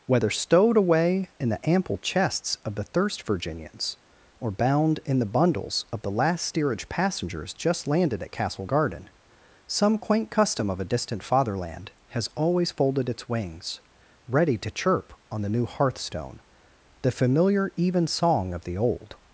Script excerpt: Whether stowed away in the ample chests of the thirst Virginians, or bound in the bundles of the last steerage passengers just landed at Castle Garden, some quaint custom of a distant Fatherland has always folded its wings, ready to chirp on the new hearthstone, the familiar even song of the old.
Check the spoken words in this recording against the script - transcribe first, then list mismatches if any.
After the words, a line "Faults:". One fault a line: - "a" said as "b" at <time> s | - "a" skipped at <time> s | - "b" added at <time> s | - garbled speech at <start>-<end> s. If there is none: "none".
Whether stowed away in the ample chests of the thirst Virginians, or bound in the bundles of the last steerage passengers just landed at Castle Garden, some quaint custom of a distant Fatherland has always folded its wings, ready to chirp on the new hearthstone, the familiar even song of the old.
Faults:
none